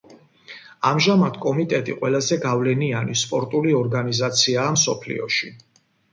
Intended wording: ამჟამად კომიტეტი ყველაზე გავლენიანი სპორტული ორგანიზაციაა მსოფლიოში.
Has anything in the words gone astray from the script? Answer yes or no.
no